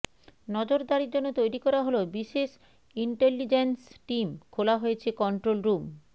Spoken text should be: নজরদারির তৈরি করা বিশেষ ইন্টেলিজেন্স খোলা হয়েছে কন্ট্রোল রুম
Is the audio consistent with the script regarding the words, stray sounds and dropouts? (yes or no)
no